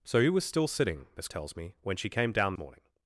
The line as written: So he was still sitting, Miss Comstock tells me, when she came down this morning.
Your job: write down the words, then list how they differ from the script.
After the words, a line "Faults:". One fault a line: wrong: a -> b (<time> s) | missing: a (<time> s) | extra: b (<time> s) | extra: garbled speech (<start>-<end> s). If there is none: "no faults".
So he was still sitting, Miss Tells me, when she came down morning.
Faults:
missing: Comstock (1.3 s)
missing: this (2.5 s)